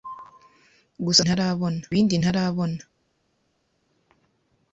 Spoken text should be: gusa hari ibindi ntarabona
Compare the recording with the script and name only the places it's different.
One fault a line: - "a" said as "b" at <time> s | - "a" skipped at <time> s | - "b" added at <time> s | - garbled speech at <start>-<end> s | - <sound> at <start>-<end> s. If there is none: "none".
- "hari" said as "ntarabona" at 1.2 s